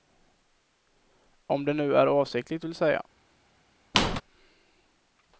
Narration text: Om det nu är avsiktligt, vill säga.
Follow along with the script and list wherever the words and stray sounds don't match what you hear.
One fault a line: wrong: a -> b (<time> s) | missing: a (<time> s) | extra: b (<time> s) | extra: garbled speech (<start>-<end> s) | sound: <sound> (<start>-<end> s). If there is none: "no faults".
sound: squeak (3.9-4.2 s)